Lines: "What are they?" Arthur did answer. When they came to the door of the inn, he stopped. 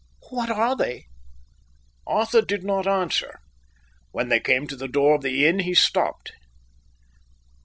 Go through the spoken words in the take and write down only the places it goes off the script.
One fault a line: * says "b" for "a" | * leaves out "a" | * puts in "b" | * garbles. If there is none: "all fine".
* puts in "not"